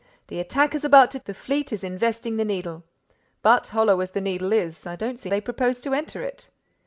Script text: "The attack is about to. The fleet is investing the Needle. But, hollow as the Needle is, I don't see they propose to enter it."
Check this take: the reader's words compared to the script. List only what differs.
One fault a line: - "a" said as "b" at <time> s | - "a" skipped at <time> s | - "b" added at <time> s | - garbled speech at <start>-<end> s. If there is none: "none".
none